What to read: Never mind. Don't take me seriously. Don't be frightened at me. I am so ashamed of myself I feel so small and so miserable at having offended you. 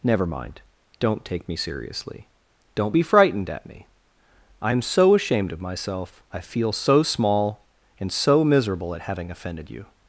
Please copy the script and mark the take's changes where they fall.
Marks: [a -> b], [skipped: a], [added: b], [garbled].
Never mind. Don't take me seriously. Don't be frightened at me. I am so ashamed of myself I feel so small and so miserable at having offended you.